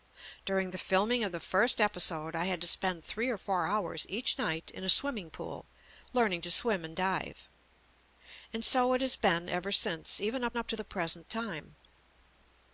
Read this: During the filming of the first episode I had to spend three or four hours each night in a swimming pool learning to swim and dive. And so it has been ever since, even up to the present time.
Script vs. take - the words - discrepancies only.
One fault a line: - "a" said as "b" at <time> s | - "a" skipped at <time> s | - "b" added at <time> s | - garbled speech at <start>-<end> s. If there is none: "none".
- "up" added at 10.6 s